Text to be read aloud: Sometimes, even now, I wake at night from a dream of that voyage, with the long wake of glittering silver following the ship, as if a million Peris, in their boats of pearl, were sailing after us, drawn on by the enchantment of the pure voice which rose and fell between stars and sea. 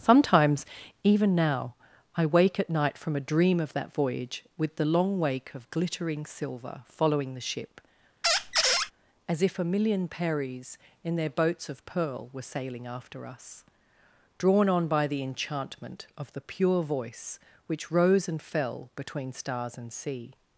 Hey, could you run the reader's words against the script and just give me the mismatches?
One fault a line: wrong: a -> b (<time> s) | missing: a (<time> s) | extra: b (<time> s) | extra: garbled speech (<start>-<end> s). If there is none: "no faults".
no faults